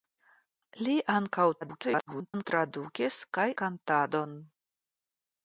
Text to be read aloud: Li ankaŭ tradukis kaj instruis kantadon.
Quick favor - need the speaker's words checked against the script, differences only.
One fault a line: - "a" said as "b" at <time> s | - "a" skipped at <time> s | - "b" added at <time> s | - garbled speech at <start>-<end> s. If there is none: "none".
- garbled speech at 1.6-2.5 s
- "instruis" skipped at 3.5 s